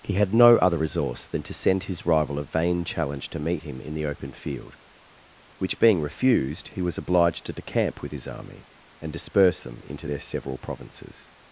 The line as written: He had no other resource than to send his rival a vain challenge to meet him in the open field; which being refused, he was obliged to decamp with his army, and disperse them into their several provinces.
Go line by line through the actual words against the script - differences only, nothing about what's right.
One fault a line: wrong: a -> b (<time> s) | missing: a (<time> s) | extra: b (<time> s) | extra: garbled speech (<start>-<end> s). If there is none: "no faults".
no faults